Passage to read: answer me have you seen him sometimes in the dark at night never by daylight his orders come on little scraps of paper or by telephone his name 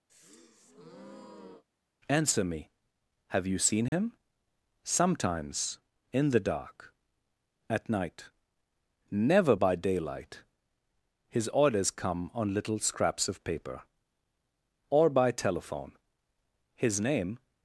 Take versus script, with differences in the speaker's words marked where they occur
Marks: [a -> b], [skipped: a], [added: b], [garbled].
answer me have you seen him sometimes in the dark at night never by daylight his orders come on little scraps of paper or by telephone his name